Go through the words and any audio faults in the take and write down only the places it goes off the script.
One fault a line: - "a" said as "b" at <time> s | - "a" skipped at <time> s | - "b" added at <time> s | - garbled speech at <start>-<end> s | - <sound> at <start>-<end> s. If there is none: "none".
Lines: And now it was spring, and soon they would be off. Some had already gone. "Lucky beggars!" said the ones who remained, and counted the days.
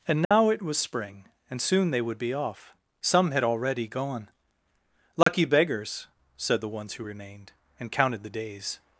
- dropout at 0.2-0.3 s
- dropout at 5.2-5.3 s